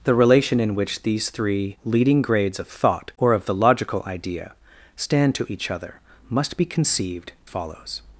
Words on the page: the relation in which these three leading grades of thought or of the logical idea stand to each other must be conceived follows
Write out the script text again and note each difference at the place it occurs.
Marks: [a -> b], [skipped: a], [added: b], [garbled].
the relation in which these three leading grades of thought or of the logical idea stand to each other must be conceived follows